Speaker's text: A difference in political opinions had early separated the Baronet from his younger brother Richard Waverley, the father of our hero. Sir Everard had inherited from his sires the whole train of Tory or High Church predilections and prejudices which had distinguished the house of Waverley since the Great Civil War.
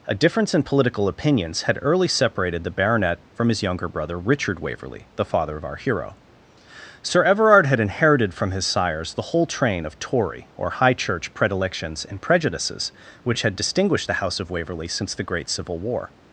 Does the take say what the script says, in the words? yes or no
yes